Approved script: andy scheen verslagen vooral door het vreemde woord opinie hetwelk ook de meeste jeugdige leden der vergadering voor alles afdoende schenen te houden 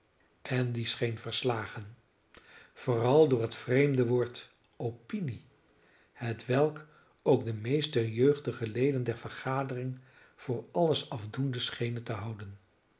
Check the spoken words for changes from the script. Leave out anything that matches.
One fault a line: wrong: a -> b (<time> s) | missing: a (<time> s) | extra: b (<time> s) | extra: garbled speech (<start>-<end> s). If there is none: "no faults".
no faults